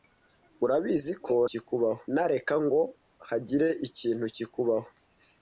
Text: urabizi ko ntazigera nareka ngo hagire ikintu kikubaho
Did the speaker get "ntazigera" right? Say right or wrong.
wrong